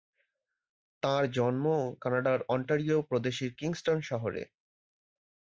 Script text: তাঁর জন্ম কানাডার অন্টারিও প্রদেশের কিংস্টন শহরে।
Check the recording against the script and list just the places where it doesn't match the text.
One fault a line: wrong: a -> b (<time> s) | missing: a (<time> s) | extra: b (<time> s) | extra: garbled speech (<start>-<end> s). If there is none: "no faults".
no faults